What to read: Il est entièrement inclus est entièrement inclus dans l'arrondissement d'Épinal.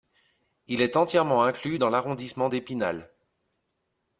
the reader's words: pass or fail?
fail